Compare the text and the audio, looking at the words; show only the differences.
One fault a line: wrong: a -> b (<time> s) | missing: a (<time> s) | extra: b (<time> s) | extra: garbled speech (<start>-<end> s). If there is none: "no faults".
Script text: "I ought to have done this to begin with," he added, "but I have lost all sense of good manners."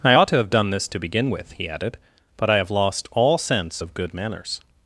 no faults